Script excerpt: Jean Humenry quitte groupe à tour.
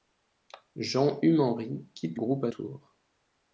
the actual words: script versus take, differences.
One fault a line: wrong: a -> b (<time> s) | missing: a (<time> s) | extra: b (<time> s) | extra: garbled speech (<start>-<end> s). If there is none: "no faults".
no faults